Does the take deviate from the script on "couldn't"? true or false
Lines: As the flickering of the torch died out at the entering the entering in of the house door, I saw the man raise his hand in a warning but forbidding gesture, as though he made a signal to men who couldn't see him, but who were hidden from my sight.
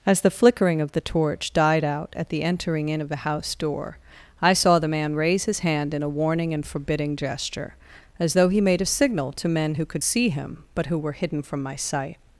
true